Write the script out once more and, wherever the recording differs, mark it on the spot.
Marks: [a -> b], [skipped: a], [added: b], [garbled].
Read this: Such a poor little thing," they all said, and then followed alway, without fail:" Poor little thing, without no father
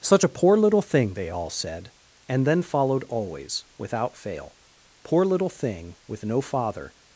Such a poor little thing," they all said, and then followed [alway, -> always] without fail:" Poor little thing, [without -> with] no father